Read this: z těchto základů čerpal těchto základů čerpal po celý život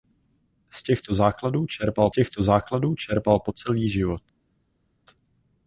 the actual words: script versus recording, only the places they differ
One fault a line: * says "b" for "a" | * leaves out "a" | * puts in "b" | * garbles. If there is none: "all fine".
all fine